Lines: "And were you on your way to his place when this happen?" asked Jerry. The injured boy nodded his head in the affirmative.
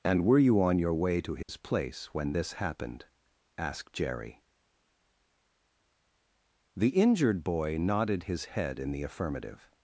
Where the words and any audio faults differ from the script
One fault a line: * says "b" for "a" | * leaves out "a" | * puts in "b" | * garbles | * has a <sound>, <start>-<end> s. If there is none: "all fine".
* has a dropout, 1.4-1.5 s
* says "happened" for "happen"